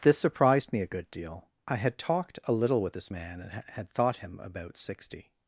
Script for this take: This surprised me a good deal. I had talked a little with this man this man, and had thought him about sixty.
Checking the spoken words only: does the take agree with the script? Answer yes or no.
no